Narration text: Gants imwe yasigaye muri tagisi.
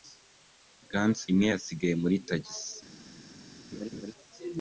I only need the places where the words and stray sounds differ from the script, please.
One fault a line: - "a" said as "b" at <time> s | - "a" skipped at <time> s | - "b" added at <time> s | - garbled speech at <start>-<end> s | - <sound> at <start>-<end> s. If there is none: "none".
- laugh at 3.7-4.1 s